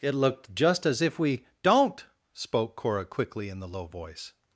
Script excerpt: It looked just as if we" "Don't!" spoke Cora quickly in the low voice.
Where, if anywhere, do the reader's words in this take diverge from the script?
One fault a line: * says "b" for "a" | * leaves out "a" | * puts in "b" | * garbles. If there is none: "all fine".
all fine